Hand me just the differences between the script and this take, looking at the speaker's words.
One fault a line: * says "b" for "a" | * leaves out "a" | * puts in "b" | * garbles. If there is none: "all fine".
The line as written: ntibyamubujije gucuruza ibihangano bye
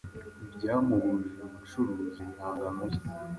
all fine